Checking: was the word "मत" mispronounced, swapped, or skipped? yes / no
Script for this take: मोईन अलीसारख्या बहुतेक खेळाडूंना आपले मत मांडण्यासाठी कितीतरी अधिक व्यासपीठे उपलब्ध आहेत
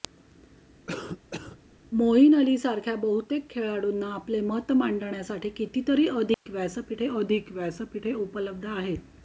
no